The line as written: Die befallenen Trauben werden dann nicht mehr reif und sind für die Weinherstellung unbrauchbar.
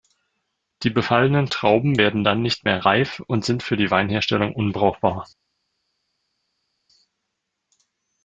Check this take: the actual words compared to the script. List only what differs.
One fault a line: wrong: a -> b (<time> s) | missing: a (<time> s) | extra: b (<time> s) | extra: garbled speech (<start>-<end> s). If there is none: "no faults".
no faults